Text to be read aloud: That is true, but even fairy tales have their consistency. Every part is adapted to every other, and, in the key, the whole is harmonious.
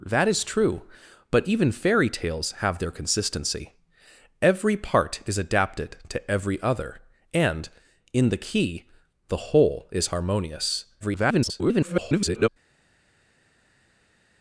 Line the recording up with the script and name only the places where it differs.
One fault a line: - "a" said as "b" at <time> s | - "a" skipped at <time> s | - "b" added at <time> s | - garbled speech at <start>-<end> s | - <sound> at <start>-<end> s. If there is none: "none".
- garbled speech at 11.0-12.5 s